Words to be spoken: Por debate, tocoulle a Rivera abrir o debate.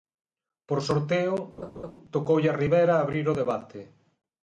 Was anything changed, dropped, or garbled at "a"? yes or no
no